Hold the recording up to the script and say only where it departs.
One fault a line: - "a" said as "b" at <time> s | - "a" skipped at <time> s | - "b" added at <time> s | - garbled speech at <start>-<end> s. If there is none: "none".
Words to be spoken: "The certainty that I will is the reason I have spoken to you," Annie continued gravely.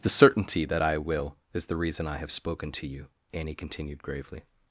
none